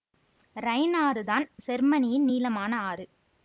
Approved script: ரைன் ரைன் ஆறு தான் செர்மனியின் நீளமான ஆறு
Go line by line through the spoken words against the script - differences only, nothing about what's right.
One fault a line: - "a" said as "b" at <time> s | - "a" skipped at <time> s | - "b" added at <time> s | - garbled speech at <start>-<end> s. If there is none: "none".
- "ரைன்" skipped at 0.9 s